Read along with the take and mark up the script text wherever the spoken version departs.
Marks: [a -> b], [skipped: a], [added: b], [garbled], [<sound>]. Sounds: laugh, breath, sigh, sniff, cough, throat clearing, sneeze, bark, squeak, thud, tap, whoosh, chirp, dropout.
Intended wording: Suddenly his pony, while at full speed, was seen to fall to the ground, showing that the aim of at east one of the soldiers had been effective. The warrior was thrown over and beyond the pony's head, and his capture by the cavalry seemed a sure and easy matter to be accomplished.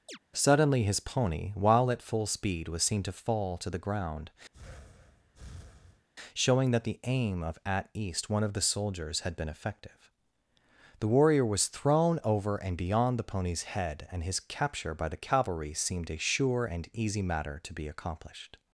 [chirp] Suddenly his pony, while at full speed, was seen to fall to the ground, [breath] showing that the aim of at east one of the soldiers had been effective. The warrior was thrown over and beyond the pony's head, and his capture by the cavalry seemed a sure and easy matter to be accomplished.